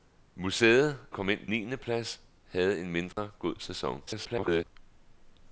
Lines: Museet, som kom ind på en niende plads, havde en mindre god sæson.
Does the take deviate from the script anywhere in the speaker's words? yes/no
yes